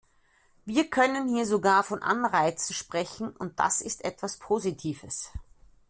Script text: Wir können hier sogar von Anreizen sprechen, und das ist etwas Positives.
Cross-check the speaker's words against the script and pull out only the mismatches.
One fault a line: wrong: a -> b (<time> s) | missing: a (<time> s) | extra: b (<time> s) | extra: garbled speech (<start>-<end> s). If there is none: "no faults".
no faults